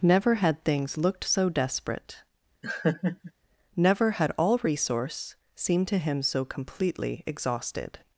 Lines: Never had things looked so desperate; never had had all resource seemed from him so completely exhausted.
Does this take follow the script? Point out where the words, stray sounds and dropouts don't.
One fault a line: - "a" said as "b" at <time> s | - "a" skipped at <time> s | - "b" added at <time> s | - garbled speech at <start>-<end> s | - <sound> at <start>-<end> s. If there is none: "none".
- laugh at 2.6-3.3 s
- "had" skipped at 4.3 s
- "from" said as "to" at 5.9 s